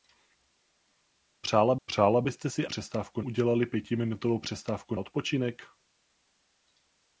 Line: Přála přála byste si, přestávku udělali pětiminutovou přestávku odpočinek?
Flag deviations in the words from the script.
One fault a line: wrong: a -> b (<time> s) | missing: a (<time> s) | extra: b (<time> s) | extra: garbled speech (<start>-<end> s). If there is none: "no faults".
no faults